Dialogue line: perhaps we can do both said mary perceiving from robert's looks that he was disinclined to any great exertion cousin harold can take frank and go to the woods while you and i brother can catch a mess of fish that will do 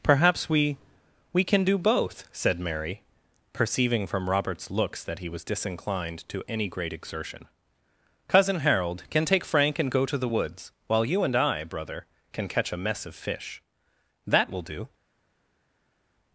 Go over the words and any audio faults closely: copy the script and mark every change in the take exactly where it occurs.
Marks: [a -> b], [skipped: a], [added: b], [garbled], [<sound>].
perhaps we [added: we] can do both said mary perceiving from robert's looks that he was disinclined to any great exertion cousin harold can take frank and go to the woods while you and i brother can catch a mess of fish that will do